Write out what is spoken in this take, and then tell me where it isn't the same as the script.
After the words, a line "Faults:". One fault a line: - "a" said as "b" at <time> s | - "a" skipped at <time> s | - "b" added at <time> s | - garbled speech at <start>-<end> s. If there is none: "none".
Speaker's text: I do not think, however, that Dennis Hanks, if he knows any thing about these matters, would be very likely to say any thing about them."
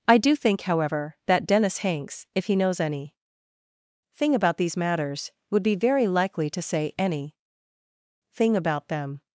I do think, however, that Dennis Hanks, if he knows any thing about these matters, would be very likely to say any thing about them."
Faults:
- "not" skipped at 0.3 s